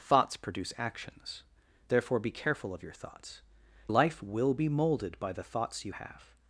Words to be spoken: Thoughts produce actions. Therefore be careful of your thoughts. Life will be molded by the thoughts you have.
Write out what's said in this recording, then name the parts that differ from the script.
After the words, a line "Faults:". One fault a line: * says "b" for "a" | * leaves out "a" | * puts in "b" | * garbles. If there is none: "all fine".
Thoughts produce actions. Therefore be careful of your thoughts. Life will be molded by the thoughts you have.
Faults:
all fine